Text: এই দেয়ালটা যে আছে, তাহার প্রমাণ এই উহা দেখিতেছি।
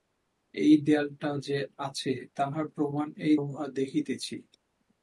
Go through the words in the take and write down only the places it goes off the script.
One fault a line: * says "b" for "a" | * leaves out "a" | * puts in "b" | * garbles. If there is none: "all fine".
all fine